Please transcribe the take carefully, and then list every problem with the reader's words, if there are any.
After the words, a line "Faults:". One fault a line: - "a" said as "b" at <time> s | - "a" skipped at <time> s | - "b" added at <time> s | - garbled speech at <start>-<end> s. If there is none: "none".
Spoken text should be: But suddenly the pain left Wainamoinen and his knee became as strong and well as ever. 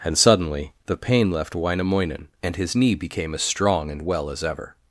And suddenly the pain left Wainamoinen and his knee became as strong and well as ever.
Faults:
- "But" said as "And" at 0.0 s